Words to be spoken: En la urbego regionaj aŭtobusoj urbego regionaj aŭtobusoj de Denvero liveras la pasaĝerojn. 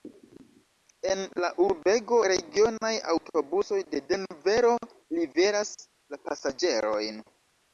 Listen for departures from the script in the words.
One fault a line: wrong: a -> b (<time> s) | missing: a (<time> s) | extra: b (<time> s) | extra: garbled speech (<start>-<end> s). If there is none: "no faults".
missing: urbego regionaj aŭtobusoj (3.8 s)